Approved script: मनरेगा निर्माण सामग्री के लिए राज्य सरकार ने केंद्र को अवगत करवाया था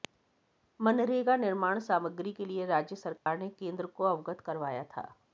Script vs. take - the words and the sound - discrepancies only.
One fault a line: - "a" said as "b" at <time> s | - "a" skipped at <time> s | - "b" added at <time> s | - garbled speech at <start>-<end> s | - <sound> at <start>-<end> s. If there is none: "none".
- dropout at 3.2-3.3 s